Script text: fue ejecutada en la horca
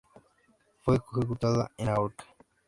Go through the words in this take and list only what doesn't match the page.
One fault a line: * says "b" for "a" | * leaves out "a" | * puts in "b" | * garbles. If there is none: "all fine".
all fine